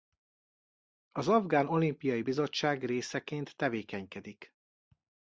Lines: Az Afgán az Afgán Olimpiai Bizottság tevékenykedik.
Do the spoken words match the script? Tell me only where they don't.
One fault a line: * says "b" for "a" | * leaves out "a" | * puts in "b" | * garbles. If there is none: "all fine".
* leaves out "az Afgán"
* puts in "részeként"